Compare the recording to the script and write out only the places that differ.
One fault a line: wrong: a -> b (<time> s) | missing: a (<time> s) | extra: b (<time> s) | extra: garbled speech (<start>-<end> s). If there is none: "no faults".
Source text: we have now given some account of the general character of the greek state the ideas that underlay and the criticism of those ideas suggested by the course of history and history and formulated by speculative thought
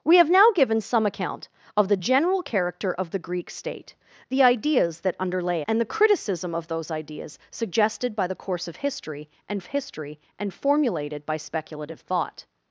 no faults